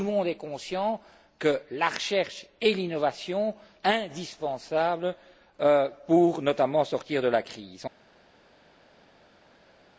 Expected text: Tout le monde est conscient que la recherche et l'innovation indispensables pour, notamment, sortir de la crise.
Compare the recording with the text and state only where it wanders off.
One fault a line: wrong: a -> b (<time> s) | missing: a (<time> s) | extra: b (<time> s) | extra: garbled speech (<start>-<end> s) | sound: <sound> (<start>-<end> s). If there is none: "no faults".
no faults